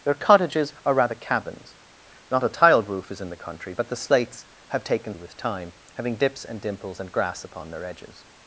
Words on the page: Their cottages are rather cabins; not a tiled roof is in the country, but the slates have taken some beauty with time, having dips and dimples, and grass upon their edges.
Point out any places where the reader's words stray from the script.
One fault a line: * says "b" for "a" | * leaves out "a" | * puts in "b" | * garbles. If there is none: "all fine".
* leaves out "some beauty"